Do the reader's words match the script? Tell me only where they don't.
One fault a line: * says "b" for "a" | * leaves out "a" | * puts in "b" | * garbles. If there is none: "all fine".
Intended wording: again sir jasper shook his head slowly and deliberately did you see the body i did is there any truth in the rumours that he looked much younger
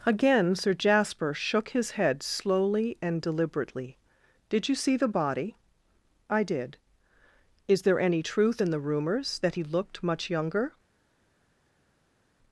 all fine